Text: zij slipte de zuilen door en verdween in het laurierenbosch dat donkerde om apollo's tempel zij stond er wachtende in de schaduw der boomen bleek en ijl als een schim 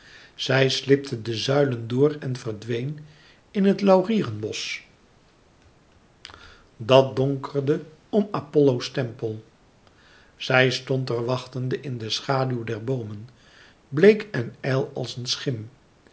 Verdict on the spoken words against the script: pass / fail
pass